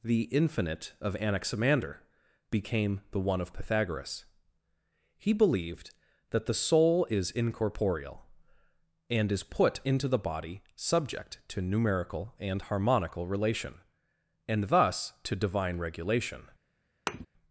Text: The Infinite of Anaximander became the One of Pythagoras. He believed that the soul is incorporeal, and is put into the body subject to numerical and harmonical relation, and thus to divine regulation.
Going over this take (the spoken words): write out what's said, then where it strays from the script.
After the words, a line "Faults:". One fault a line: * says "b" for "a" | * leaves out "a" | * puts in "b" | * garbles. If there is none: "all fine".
The Infinite of Anaximander became the One of Pythagoras. He believed that the soul is incorporeal, and is put into the body subject to numerical and harmonical relation, and thus to divine regulation.
Faults:
all fine